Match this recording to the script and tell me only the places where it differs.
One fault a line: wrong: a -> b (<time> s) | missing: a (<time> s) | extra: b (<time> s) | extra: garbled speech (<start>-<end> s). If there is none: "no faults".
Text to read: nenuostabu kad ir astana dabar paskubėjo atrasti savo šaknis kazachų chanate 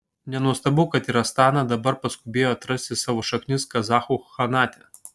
no faults